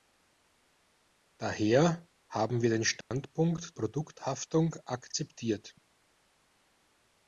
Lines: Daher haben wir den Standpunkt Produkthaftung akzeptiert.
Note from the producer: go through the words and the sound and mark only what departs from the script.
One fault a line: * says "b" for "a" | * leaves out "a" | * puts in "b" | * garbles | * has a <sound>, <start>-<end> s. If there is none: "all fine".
* has a dropout, 3.0-3.1 s